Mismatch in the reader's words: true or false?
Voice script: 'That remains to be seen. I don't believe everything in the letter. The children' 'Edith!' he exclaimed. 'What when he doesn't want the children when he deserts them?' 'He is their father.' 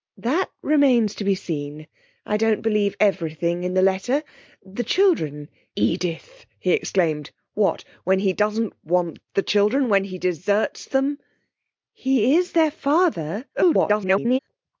true